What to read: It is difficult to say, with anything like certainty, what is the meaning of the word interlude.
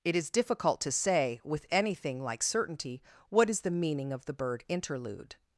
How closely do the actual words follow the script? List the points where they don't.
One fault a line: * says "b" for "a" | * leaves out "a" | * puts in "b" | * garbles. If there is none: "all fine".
* says "bird" for "word"